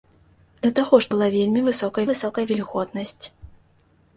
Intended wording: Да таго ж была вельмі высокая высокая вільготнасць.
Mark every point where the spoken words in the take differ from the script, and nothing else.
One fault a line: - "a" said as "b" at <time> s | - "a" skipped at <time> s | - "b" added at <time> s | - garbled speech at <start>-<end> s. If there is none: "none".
none